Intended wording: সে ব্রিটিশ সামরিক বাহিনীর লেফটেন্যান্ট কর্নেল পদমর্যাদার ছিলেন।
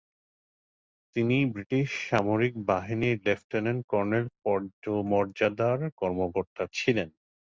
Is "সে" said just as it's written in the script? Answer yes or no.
no